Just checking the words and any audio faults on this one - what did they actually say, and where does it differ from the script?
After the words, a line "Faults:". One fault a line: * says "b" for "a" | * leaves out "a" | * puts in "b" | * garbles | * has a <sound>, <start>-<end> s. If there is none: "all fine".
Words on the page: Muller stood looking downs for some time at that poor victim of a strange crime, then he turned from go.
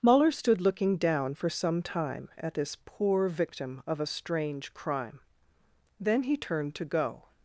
Muller stood looking down for some time at this poor victim of a strange crime, then he turned to go.
Faults:
* says "down" for "downs"
* says "this" for "that"
* says "to" for "from"